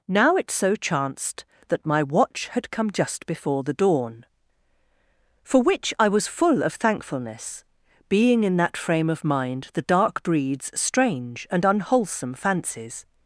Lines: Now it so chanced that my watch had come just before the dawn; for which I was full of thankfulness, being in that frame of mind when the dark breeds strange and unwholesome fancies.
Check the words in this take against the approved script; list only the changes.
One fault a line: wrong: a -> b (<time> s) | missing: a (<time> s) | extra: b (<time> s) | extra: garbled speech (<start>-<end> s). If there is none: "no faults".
missing: when (9.7 s)